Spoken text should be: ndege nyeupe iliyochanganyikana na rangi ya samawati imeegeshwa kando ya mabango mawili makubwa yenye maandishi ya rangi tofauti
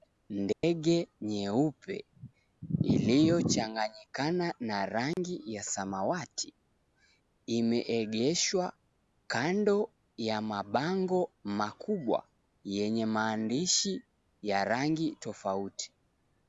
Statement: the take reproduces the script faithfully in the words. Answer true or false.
false